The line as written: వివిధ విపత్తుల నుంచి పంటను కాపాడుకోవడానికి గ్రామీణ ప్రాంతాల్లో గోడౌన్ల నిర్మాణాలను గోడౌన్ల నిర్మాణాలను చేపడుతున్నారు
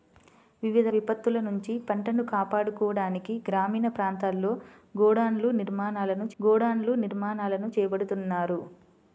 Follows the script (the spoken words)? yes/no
yes